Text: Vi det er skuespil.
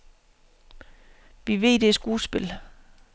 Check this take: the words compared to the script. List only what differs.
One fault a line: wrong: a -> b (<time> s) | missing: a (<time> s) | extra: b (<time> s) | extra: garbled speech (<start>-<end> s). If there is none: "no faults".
extra: ved (1.6 s)